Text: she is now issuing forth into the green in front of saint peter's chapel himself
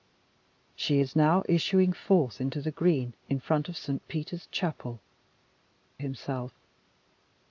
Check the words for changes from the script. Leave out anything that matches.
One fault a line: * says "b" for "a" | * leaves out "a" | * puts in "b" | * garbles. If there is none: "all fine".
all fine